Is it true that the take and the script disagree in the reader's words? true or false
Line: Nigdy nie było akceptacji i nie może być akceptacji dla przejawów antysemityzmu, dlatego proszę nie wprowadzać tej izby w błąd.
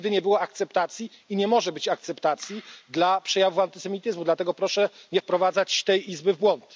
false